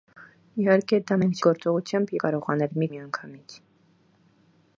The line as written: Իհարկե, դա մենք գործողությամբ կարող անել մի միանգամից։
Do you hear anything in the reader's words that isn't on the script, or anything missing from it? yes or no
no